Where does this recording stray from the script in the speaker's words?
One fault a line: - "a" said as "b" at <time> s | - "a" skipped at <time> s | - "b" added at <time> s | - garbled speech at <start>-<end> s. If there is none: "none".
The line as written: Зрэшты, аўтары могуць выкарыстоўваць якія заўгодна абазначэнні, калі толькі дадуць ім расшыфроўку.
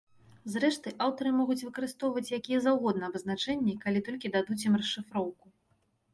none